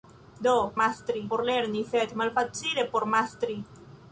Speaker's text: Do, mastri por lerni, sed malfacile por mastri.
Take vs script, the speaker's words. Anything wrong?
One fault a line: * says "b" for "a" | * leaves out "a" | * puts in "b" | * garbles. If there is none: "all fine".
all fine